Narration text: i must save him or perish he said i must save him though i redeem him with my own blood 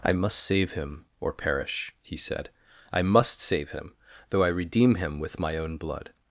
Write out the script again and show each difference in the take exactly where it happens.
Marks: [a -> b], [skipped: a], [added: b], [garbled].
i must save him or perish he said i must save him though i redeem him with my own blood